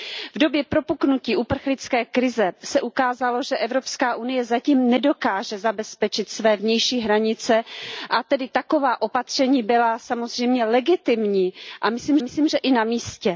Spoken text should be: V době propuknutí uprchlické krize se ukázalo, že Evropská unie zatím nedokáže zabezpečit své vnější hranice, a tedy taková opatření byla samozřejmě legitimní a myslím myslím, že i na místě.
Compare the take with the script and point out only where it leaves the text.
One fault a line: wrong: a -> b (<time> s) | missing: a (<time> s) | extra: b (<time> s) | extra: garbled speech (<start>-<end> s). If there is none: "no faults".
no faults